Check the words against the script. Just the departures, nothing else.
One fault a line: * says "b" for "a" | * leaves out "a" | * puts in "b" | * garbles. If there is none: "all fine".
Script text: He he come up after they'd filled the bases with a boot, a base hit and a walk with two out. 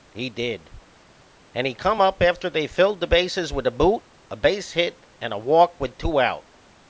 * puts in "did and"